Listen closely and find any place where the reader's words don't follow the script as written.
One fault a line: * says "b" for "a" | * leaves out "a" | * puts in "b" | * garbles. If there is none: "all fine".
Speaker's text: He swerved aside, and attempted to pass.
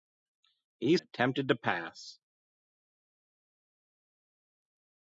* leaves out "swerved aside and"